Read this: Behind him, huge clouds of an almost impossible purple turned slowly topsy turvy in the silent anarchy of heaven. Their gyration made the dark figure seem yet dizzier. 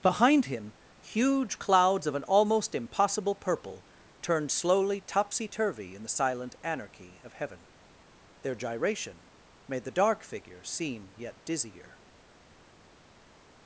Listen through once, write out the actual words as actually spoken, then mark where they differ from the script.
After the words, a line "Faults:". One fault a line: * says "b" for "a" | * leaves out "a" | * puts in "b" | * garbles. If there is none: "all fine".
Behind him, huge clouds of an almost impossible purple turned slowly topsy turvy in the silent anarchy of heaven. Their gyration made the dark figure seem yet dizzier.
Faults:
all fine